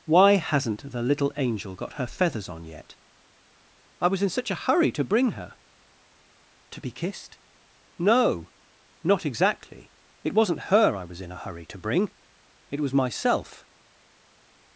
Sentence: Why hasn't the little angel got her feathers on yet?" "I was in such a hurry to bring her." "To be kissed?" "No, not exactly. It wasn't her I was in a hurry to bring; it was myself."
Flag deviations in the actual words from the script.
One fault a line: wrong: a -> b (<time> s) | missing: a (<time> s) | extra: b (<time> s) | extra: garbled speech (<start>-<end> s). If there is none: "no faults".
no faults